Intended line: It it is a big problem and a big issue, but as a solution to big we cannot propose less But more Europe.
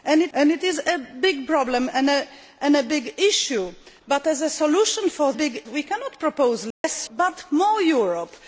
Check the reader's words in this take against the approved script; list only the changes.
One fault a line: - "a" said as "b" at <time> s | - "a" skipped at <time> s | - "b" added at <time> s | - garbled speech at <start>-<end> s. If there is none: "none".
none